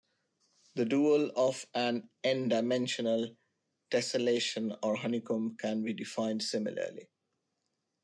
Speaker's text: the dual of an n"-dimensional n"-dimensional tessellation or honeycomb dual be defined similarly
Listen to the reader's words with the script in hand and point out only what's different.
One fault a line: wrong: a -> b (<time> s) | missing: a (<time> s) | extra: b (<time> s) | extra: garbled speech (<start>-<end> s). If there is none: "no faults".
missing: n"-dimensional (3.4 s)
wrong: dual -> can (5.6 s)